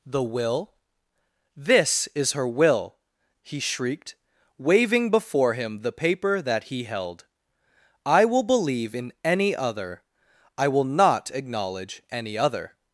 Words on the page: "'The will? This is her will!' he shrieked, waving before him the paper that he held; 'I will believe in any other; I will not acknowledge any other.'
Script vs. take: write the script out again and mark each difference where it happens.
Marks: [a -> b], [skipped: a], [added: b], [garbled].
"'The will? This is her will!' he shrieked, waving before him the paper that he held; 'I will believe in any other; I will not acknowledge any other.'